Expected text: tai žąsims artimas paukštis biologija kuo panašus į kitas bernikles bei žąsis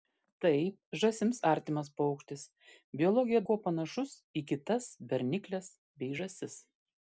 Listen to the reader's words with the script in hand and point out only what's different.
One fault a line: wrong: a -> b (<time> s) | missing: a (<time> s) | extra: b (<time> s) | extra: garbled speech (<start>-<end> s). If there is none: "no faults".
no faults